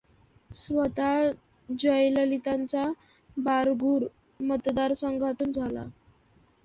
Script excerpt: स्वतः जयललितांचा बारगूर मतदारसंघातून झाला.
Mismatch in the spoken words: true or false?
false